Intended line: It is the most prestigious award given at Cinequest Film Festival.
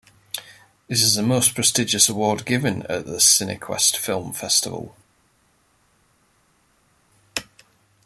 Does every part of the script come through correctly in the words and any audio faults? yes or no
no